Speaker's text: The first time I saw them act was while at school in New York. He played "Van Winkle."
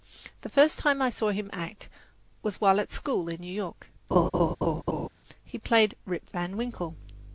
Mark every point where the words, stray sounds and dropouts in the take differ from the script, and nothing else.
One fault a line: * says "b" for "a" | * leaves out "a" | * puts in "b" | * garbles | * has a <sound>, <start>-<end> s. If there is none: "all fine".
* says "him" for "them"
* has a laugh, 4.1-5.1 s
* puts in "Rip"